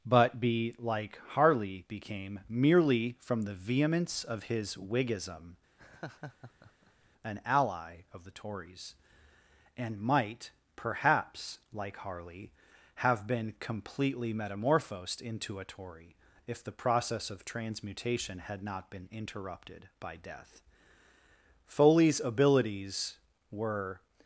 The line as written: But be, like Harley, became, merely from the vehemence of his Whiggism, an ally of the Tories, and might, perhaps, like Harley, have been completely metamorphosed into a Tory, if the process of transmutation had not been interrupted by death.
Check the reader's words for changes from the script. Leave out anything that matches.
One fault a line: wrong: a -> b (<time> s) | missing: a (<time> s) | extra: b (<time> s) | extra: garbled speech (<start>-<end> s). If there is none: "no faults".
extra: Foley's abilities were (21.7 s)